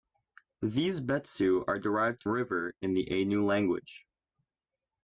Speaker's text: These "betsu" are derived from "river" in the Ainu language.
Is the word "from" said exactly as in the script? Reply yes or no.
no